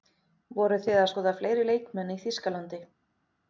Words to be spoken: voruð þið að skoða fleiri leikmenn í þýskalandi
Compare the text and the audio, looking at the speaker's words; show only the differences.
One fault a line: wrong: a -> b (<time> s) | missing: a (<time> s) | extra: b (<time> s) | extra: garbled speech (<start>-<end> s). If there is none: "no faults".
no faults